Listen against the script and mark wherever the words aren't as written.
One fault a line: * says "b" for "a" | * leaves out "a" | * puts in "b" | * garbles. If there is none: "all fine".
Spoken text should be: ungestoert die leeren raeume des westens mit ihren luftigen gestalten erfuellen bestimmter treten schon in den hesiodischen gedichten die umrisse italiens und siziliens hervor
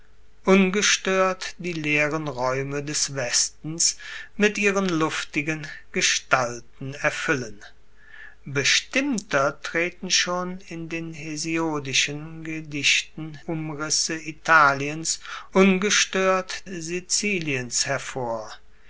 * leaves out "die"
* says "ungestoert" for "und"